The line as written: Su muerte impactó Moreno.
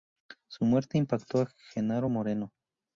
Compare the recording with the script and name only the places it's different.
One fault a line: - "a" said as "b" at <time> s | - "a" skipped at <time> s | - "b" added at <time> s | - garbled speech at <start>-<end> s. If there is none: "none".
- "a Genaro" added at 1.4 s